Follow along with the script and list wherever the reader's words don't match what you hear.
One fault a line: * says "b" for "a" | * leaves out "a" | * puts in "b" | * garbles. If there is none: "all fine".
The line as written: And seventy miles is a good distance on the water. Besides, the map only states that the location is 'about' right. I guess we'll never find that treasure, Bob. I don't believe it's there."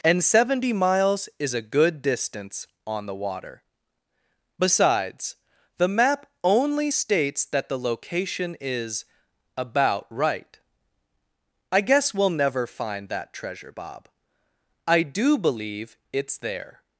* says "do" for "don't"